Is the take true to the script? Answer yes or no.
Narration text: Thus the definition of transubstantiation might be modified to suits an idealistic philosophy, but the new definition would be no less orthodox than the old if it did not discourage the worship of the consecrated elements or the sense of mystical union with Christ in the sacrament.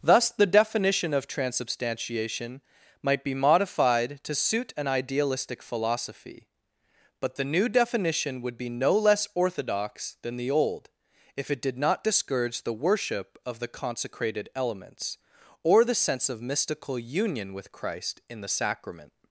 no